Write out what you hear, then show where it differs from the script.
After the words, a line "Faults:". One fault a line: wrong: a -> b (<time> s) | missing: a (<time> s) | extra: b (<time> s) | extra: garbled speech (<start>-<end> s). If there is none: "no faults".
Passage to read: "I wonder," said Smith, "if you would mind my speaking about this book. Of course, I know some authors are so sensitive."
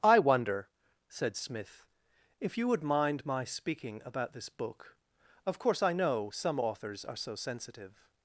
"I wonder," said Smith, "if you would mind my speaking about this book. Of course, I know some authors are so sensitive."
Faults:
no faults